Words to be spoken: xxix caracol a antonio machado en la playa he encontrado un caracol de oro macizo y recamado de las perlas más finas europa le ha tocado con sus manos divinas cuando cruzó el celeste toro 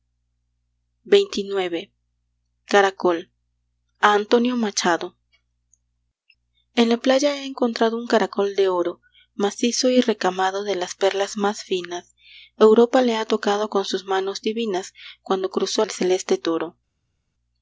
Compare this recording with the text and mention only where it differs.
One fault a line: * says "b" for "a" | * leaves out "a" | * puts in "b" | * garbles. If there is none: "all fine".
all fine